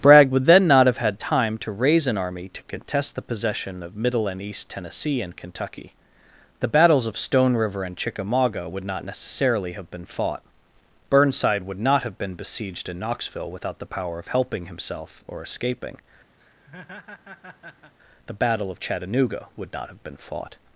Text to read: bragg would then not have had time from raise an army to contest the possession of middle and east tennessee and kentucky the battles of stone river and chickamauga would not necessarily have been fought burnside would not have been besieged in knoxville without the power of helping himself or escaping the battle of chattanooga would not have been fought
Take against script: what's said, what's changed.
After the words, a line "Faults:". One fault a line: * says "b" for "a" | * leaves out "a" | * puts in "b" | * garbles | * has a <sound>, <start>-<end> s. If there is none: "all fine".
bragg would then not have had time to raise an army to contest the possession of middle and east tennessee and kentucky the battles of stone river and chickamauga would not necessarily have been fought burnside would not have been besieged in knoxville without the power of helping himself or escaping the battle of chattanooga would not have been fought
Faults:
* says "to" for "from"
* has a laugh, 16.4-17.9 s